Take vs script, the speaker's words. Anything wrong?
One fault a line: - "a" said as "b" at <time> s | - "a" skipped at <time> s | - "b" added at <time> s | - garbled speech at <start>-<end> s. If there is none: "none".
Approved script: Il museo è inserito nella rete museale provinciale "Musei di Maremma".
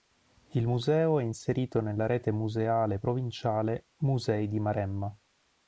none